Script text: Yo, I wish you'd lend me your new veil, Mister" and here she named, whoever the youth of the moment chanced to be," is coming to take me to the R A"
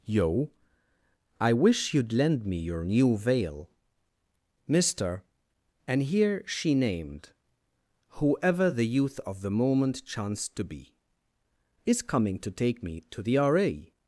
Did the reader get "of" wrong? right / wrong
right